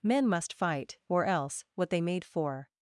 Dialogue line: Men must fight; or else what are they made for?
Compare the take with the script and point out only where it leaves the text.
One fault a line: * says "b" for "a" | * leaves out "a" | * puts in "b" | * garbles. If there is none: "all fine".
* leaves out "are"